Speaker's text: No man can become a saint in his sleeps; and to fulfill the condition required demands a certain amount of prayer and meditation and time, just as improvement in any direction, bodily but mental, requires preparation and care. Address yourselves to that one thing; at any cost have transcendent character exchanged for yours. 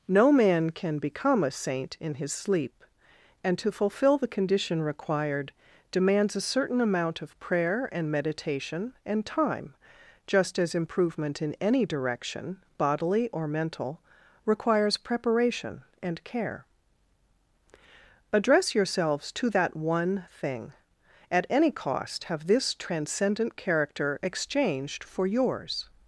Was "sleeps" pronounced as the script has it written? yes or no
no